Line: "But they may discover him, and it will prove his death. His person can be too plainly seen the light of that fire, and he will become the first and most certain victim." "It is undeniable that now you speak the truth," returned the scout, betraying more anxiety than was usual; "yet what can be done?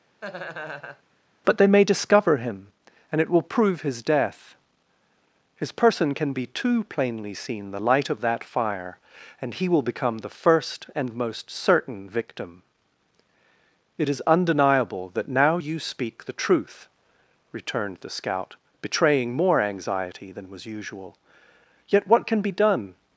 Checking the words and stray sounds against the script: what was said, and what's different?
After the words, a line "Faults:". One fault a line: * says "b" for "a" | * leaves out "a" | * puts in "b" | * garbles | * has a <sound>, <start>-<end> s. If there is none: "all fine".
"But they may discover him, and it will prove his death. His person can be too plainly seen the light of that fire, and he will become the first and most certain victim." "It is undeniable that now you speak the truth," returned the scout, betraying more anxiety than was usual; "yet what can be done?
Faults:
* has a laugh, 0.2-1.0 s